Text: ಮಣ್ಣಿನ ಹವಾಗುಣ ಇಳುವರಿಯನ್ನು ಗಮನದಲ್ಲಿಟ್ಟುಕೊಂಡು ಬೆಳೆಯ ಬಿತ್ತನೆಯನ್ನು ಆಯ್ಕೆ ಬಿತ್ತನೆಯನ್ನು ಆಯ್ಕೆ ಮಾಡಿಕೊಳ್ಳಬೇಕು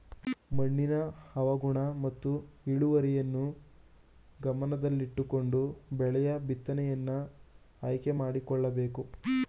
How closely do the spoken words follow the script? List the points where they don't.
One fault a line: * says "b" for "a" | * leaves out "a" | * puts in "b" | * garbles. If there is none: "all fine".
* puts in "ಮತ್ತು"
* leaves out "ಬಿತ್ತನೆಯನ್ನು ಆಯ್ಕೆ"